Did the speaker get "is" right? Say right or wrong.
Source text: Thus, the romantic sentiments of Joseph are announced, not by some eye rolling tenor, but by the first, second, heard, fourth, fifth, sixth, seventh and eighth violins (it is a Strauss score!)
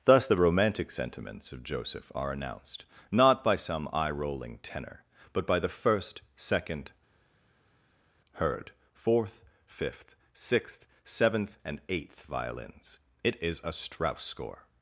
right